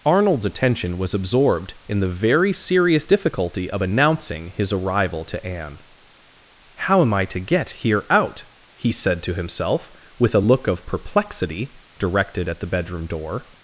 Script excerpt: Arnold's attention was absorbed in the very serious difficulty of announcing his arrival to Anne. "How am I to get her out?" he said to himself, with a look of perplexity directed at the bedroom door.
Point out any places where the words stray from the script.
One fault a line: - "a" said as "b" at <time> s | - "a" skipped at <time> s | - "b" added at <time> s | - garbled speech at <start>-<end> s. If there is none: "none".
- "her" said as "here" at 7.8 s